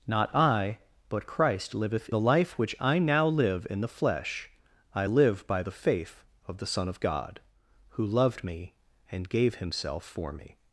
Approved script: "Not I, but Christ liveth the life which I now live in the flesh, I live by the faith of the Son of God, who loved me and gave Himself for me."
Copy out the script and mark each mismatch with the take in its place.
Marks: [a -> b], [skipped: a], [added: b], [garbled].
"Not I, but Christ liveth the life which I now live in the flesh, I live by the faith of the Son of God, who loved me and gave Himself for me."